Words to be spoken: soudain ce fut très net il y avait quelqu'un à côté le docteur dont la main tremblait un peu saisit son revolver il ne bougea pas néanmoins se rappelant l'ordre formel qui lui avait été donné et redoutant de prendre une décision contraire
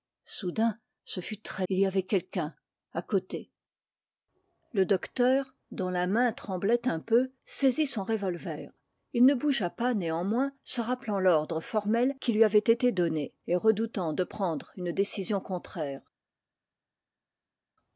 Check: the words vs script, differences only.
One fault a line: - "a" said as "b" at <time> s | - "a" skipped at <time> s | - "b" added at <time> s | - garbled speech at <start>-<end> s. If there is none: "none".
- "net" skipped at 1.7 s